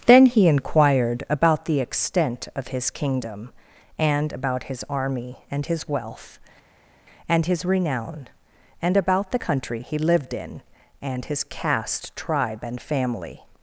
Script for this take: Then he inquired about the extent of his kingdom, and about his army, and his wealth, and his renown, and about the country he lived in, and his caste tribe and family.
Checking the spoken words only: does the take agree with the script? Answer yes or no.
yes